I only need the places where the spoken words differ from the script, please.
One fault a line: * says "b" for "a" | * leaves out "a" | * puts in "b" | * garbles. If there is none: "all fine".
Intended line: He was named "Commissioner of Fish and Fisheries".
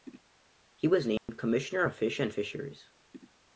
all fine